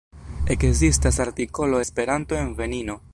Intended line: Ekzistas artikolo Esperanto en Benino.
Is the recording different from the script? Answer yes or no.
no